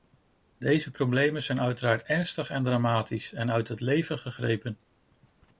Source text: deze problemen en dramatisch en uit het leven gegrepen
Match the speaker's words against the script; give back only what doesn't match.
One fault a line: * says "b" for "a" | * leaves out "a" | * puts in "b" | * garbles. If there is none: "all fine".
* puts in "zijn uiteraard ernstig"